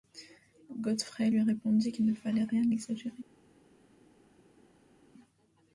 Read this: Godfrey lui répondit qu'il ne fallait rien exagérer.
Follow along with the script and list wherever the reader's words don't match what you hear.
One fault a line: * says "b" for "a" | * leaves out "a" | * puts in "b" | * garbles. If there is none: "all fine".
all fine